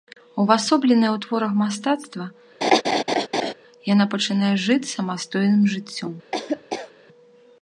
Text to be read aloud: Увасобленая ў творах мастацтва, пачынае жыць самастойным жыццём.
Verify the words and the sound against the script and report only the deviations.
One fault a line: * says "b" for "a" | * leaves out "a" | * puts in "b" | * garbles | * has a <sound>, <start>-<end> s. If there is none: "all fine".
* has a laugh, 2.6-3.5 s
* puts in "яна"
* has a laugh, 6.3-6.9 s